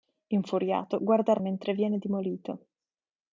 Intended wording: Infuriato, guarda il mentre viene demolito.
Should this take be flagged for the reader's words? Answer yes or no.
no